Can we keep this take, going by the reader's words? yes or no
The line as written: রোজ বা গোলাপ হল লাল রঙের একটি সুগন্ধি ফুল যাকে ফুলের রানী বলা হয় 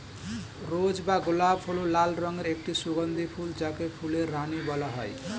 yes